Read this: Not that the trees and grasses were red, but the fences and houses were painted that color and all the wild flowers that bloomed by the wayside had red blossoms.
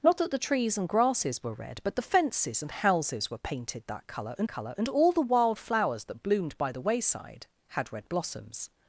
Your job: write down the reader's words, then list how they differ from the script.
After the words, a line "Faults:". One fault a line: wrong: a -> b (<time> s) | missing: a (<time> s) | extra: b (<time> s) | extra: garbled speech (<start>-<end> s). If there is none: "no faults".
Not that the trees and grasses were red, but the fences and houses were painted that color and color and all the wild flowers that bloomed by the wayside had red blossoms.
Faults:
extra: color and (4.5 s)